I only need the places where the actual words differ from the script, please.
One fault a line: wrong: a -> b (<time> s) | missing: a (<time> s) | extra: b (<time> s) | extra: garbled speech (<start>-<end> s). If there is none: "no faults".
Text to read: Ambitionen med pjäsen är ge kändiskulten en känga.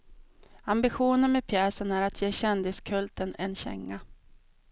extra: att (2.0 s)